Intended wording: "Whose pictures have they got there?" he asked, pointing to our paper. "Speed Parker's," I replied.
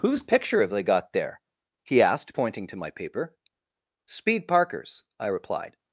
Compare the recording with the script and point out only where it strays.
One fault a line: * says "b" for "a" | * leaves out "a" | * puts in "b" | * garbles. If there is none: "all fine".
* says "picture" for "pictures"
* says "my" for "our"